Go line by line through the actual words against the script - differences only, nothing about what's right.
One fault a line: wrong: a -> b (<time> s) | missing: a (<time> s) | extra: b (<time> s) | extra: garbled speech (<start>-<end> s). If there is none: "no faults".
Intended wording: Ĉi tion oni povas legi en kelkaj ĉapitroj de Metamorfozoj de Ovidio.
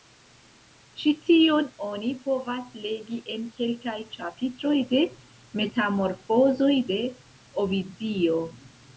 no faults